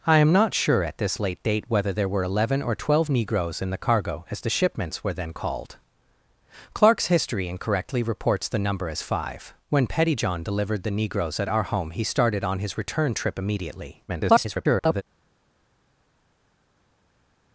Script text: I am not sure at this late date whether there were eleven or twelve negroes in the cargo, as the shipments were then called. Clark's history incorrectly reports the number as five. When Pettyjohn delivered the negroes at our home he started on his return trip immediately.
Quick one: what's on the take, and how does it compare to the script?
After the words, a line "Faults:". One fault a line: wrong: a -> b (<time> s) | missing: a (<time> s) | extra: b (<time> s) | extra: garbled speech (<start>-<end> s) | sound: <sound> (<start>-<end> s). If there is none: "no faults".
I am not sure at this late date whether there were eleven or twelve negroes in the cargo, as the shipments were then called. Clark's history incorrectly reports the number as five. When Pettyjohn delivered the negroes at our home he started on his return trip immediately. [garbled]
Faults:
extra: garbled speech (14.1-15.0 s)